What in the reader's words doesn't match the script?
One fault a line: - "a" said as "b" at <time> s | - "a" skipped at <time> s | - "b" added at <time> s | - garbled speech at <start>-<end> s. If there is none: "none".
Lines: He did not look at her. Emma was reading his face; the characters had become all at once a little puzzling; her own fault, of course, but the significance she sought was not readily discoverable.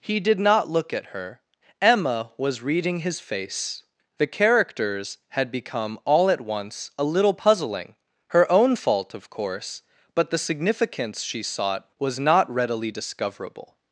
none